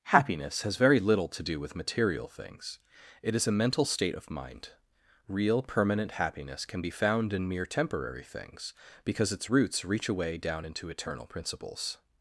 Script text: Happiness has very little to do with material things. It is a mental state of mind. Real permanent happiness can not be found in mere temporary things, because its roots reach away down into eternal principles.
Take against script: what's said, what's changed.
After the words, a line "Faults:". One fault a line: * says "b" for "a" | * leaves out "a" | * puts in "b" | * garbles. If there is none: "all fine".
Happiness has very little to do with material things. It is a mental state of mind. Real permanent happiness can be found in mere temporary things, because its roots reach away down into eternal principles.
Faults:
* leaves out "not"